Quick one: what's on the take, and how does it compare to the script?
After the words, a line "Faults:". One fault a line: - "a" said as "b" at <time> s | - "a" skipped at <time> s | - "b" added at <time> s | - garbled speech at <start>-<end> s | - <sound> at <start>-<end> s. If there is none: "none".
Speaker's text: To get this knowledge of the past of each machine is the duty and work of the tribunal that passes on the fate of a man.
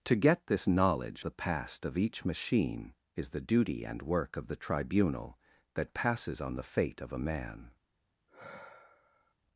To get this knowledge the past of each machine is the duty and work of the tribunal that passes on the fate of a man.
Faults:
- "of" skipped at 1.2 s
- sigh at 8.3-9.3 s